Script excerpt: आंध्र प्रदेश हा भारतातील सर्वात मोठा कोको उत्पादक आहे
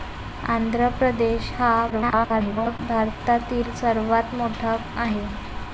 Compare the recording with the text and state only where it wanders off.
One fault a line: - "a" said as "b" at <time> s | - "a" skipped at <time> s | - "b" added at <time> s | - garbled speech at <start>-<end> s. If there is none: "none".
- garbled speech at 1.9-2.8 s
- "कोको उत्पादक" skipped at 4.8 s